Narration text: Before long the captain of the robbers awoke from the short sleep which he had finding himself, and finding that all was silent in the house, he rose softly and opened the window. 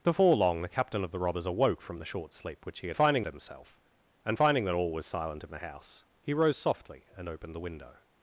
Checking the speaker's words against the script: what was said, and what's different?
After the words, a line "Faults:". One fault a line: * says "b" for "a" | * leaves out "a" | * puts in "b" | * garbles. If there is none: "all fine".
Before long the captain of the robbers awoke from the short sleep which he had finding himself, and finding that all was silent in the house, he rose softly and opened the window.
Faults:
all fine